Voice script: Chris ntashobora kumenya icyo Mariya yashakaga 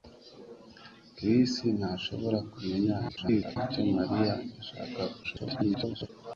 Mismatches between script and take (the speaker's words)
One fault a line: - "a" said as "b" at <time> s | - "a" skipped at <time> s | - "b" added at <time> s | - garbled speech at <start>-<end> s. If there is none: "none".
- garbled speech at 3.1-3.6 s
- garbled speech at 5.2-6.1 s